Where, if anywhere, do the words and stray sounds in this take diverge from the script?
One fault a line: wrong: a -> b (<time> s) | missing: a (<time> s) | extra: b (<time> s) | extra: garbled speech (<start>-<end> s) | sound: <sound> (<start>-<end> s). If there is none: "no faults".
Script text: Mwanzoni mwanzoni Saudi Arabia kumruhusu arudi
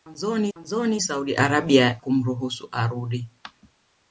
no faults